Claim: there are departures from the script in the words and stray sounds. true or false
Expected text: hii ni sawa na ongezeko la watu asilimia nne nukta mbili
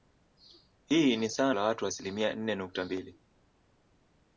true